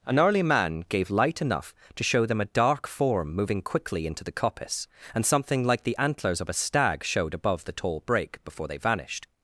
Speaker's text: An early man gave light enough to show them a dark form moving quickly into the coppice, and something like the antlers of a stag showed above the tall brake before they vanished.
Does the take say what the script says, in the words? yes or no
yes